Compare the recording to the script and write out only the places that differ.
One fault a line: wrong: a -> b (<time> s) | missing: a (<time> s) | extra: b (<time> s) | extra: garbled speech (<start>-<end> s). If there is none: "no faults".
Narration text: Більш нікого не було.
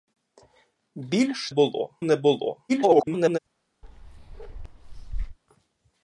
wrong: нікого -> було (1.5 s)
extra: garbled speech (2.7-3.4 s)